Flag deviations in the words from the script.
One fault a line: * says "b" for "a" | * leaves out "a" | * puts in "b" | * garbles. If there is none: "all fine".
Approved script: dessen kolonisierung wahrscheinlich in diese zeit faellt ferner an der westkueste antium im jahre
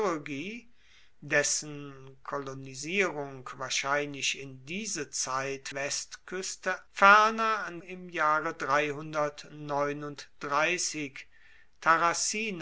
* says "westkueste" for "faellt"
* leaves out "der westkueste antium"